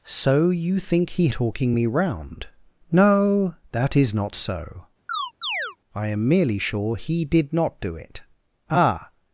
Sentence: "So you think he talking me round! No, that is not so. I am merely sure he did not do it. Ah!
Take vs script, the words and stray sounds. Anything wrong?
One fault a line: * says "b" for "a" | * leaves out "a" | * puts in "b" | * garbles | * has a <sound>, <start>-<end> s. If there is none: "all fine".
* has a chirp, 5.1-5.8 s